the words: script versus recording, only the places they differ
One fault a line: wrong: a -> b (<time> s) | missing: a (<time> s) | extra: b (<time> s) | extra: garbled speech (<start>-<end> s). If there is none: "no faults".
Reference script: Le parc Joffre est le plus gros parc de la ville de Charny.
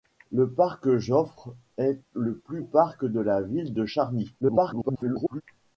missing: gros (2.6 s)
extra: garbled speech (4.4-5.4 s)